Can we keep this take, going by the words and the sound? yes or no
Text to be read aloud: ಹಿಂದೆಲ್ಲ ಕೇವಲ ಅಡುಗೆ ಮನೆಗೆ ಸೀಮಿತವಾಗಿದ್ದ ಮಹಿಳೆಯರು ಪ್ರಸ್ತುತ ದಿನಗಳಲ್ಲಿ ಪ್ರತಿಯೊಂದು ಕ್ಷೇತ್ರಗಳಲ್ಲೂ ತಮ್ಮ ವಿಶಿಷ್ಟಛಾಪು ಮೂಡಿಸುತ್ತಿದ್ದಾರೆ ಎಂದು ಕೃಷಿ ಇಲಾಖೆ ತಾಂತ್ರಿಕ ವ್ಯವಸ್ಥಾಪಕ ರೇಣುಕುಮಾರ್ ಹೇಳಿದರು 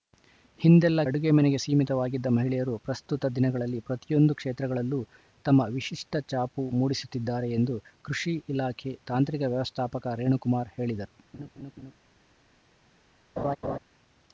no